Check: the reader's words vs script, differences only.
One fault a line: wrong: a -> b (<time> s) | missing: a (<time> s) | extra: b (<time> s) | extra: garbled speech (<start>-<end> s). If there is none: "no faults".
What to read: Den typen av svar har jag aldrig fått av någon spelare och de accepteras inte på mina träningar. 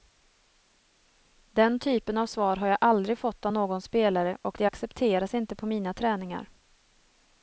no faults